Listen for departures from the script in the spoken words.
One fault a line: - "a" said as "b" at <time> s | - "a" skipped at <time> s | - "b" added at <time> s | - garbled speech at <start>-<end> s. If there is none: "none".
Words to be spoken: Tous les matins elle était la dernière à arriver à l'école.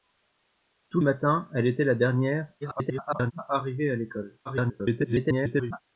- "les" skipped at 1.0 s
- garbled speech at 2.6-3.3 s
- garbled speech at 4.5-5.8 s